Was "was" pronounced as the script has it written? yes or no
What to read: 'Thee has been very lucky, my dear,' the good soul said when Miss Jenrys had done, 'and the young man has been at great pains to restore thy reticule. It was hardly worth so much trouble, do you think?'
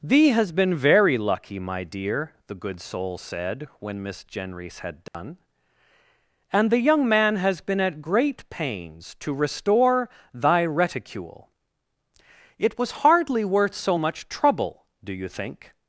yes